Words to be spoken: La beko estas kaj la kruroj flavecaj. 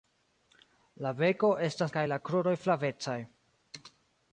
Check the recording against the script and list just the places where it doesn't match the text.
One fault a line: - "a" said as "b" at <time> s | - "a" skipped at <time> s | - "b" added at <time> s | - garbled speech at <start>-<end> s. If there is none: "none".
none